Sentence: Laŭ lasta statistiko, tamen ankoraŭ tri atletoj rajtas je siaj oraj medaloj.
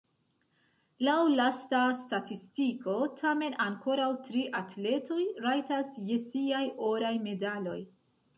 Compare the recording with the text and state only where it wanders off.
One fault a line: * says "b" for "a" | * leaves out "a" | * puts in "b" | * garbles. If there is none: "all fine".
all fine